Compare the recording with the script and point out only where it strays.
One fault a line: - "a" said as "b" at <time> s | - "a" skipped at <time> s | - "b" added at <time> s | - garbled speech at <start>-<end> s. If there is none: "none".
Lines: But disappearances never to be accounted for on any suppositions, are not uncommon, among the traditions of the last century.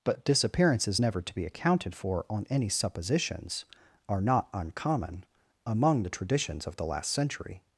none